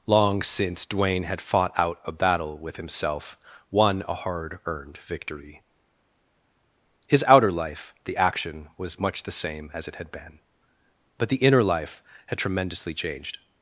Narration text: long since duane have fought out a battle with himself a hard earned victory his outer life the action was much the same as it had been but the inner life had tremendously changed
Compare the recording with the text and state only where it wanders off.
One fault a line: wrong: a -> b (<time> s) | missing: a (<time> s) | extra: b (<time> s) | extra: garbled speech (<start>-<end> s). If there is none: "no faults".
wrong: have -> had (1.2 s)
extra: won (3.7 s)